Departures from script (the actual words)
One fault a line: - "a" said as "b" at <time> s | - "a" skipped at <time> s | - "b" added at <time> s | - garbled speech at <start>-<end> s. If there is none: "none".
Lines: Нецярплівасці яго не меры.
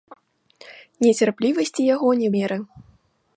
none